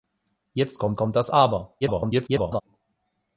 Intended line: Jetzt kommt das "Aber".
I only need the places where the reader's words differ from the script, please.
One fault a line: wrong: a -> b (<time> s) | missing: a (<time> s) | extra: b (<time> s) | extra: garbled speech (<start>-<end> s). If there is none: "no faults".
extra: kommt (1.0 s)
extra: garbled speech (1.8-2.6 s)